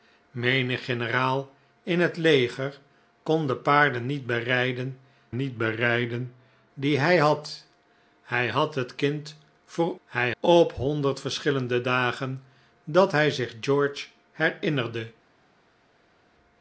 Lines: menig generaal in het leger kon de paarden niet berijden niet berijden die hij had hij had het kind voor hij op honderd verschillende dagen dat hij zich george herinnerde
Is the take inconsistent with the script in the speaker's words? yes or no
no